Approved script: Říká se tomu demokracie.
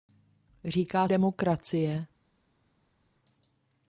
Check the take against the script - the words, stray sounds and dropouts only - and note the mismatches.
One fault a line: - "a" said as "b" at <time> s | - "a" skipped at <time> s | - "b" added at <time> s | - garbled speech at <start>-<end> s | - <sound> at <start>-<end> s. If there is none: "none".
- "se tomu" skipped at 1.1 s